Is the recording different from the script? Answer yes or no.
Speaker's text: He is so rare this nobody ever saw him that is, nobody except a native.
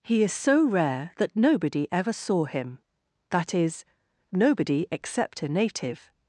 yes